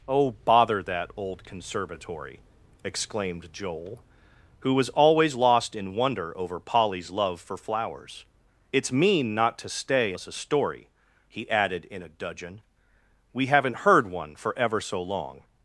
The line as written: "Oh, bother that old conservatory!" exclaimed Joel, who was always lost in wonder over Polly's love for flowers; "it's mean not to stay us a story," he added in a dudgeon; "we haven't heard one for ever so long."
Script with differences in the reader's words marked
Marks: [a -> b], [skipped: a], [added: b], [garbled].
"Oh, bother that old conservatory!" exclaimed Joel, who was always lost in wonder over Polly's love for flowers; "it's mean not to stay us a story," he added in a dudgeon; "we haven't heard one for ever so long."